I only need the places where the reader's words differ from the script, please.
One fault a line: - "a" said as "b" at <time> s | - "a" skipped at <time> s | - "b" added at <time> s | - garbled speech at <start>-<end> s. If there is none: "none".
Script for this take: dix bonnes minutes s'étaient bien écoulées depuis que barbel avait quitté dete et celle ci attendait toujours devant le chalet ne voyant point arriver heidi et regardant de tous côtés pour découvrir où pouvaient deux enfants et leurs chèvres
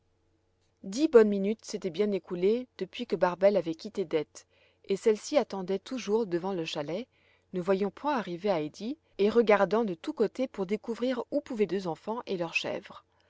none